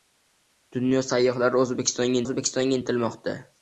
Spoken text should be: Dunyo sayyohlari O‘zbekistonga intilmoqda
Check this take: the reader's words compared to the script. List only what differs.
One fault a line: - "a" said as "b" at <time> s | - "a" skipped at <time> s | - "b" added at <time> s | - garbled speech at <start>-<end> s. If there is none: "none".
- "O‘zbekistonga" added at 2.2 s